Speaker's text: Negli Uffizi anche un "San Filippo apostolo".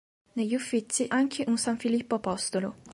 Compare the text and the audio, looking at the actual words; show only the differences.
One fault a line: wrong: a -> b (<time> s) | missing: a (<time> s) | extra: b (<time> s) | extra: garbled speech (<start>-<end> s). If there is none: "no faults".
no faults